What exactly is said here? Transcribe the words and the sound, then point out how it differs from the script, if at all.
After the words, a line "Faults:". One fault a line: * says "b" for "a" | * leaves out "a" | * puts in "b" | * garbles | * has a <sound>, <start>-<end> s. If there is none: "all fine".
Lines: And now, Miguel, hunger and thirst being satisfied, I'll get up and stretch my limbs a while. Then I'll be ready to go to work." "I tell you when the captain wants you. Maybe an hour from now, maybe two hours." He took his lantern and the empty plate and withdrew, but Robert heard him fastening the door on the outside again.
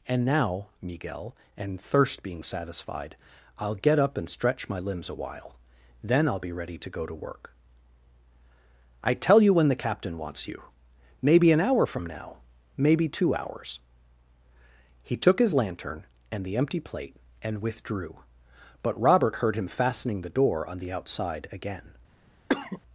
And now, Miguel, and thirst being satisfied, I'll get up and stretch my limbs a while. Then I'll be ready to go to work." "I tell you when the captain wants you. Maybe an hour from now, maybe two hours." He took his lantern and the empty plate and withdrew, but Robert heard him fastening the door on the outside again.
Faults:
* leaves out "hunger"
* has a cough, 22.5-22.8 s